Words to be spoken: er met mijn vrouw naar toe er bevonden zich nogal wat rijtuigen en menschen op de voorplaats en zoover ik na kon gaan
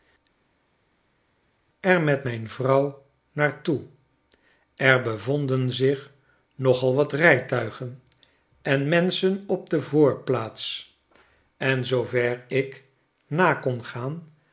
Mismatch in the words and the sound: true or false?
false